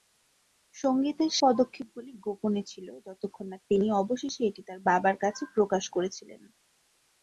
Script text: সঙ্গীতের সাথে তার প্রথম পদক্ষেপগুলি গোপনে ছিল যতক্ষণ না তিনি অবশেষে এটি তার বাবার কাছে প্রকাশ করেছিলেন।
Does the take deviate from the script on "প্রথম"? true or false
true